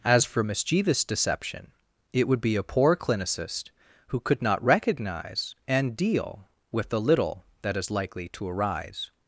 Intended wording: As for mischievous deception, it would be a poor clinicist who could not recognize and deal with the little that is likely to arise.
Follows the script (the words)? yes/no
yes